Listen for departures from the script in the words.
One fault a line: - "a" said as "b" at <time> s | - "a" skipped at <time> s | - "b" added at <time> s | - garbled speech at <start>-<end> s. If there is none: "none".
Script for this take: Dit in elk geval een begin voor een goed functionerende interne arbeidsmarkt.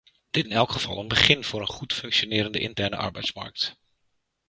none